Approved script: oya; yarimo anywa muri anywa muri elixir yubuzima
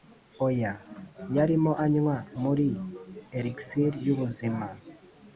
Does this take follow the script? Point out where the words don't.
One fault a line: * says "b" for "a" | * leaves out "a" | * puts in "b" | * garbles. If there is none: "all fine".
* leaves out "anywa muri"